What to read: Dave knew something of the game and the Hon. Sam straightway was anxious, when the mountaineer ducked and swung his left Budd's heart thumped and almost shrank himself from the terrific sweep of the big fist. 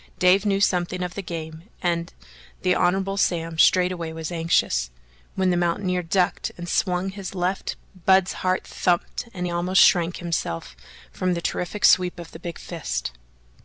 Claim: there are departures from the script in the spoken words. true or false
false